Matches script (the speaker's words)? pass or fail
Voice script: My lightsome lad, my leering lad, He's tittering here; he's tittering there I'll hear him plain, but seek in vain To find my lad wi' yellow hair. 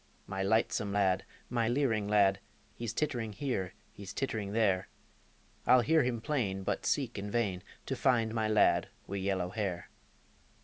pass